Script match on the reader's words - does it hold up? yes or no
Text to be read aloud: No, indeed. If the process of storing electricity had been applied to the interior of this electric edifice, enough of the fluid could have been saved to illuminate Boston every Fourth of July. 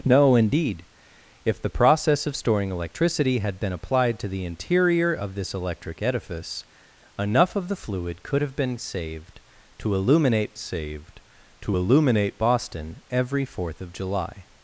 no